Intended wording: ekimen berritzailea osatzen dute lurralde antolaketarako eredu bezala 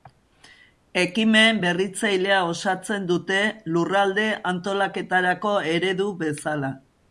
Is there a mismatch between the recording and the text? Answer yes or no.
no